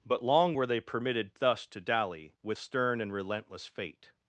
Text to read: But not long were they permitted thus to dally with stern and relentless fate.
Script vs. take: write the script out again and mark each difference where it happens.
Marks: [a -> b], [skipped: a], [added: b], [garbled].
But [skipped: not] long were they permitted thus to dally with stern and relentless fate.